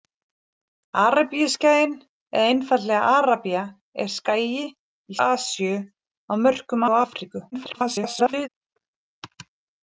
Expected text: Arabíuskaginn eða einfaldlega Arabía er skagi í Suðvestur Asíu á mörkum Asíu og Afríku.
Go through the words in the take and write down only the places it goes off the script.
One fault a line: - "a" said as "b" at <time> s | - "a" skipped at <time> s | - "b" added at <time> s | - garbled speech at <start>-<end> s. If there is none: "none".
- "Suðvestur" skipped at 5.2 s
- "Asíu" skipped at 6.8 s
- garbled speech at 7.5-8.5 s